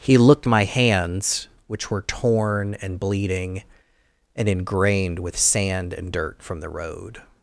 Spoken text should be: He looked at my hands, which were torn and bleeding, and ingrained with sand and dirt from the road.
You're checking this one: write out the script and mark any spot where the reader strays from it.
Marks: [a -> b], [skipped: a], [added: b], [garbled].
He looked [skipped: at] my hands, which were torn and bleeding, and ingrained with sand and dirt from the road.